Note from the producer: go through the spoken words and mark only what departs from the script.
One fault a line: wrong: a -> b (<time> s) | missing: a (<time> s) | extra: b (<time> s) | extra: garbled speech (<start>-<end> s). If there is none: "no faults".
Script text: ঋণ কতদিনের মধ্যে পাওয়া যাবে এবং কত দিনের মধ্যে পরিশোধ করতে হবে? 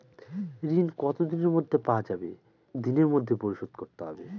missing: এবং কত (2.3 s)